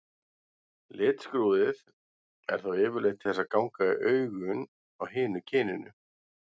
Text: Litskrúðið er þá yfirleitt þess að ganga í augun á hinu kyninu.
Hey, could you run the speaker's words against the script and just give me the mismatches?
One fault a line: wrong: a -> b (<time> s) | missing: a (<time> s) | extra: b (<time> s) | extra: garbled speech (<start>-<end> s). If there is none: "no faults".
no faults